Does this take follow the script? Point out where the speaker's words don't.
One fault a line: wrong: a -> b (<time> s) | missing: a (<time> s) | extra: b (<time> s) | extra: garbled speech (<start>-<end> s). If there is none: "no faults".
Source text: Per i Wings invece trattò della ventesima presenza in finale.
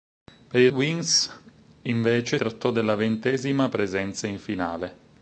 no faults